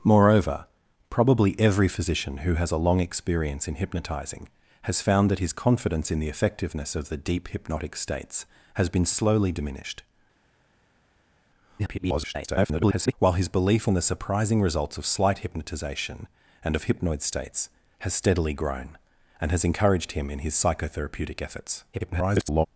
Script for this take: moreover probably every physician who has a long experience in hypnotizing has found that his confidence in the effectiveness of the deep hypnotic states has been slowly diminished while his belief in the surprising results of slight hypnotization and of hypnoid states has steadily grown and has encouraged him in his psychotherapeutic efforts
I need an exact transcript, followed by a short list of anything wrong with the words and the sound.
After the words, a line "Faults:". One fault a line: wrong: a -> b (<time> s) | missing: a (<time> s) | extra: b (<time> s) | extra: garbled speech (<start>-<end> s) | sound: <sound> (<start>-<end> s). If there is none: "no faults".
moreover probably every physician who has a long experience in hypnotizing has found that his confidence in the effectiveness of the deep hypnotic states has been slowly diminished [garbled] while his belief in the surprising results of slight hypnotization and of hypnoid states has steadily grown and has encouraged him in his psychotherapeutic efforts [garbled]
Faults:
extra: garbled speech (11.8-13.1 s)
extra: garbled speech (21.9-22.7 s)